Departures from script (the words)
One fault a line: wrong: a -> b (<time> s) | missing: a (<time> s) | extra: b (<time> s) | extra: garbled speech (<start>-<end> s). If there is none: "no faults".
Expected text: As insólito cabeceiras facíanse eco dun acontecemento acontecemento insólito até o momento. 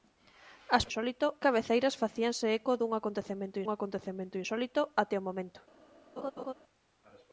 no faults